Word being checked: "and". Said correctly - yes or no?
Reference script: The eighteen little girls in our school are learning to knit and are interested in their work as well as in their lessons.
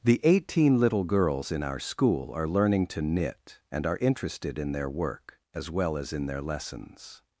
yes